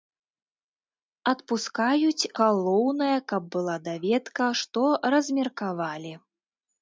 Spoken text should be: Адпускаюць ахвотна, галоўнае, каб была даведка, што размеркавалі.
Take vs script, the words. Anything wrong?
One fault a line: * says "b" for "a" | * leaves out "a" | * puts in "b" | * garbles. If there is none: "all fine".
* leaves out "ахвотна"